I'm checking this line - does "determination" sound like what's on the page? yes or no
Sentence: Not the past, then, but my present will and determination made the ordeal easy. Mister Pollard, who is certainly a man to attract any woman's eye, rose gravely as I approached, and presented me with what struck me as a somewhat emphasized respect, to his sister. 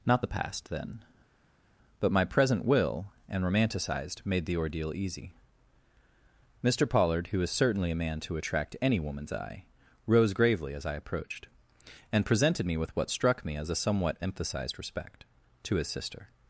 no